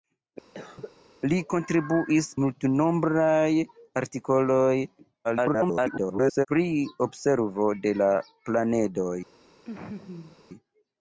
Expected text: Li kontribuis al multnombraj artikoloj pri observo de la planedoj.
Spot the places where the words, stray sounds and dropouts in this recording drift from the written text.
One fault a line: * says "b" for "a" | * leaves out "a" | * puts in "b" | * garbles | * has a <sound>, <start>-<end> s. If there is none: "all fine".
* has a cough, 0.5-1.0 s
* leaves out "al"
* garbles
* has a laugh, 9.7-10.4 s